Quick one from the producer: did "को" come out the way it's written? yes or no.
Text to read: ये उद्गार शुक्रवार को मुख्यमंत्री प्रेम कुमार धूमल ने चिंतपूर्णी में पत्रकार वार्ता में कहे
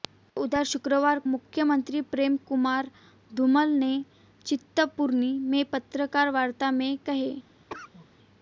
no